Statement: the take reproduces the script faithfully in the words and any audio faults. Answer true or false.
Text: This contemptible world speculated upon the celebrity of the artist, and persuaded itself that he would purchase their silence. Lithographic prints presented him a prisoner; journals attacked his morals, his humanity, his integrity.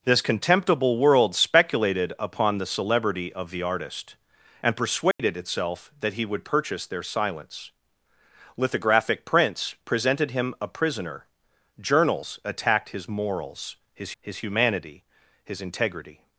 false